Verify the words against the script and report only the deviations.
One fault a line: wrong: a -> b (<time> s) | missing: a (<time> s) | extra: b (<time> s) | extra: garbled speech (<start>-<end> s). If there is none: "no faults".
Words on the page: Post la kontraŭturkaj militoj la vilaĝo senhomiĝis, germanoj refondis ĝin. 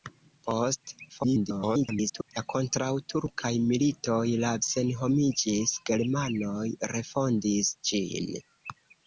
extra: garbled speech (1.1-2.3 s)
missing: vilaĝo (4.5 s)